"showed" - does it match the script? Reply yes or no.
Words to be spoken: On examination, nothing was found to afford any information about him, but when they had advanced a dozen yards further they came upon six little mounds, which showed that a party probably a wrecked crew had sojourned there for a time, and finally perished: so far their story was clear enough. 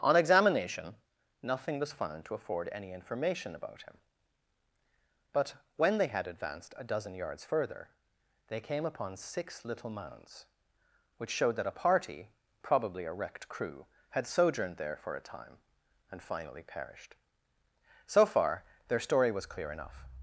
yes